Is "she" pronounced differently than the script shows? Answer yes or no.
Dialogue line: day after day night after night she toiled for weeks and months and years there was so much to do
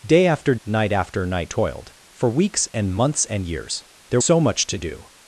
yes